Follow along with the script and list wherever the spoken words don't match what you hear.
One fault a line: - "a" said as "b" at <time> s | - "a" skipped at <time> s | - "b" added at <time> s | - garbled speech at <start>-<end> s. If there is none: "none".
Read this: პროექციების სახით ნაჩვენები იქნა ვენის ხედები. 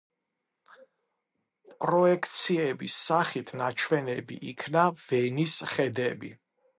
none